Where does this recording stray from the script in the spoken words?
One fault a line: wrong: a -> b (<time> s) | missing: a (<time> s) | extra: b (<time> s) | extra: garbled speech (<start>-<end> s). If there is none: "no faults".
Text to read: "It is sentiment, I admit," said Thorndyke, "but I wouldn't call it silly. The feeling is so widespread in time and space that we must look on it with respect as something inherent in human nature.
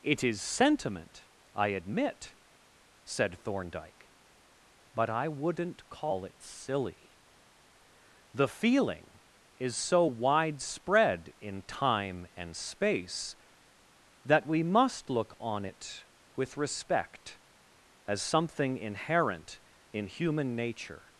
no faults